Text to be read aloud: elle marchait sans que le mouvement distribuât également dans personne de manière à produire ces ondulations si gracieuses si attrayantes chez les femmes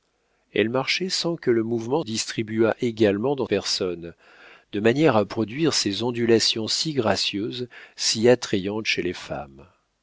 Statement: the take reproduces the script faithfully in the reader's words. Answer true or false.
true